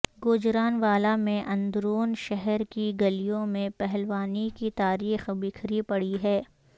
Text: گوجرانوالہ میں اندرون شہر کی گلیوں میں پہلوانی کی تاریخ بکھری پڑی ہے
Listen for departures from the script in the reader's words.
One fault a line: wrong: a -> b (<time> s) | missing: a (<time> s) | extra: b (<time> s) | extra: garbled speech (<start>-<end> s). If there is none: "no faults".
no faults